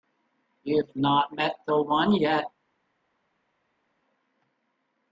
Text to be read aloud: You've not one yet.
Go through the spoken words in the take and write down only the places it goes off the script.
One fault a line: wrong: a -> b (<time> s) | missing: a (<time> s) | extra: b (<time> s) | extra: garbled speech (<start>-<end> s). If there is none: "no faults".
extra: met the (1.3 s)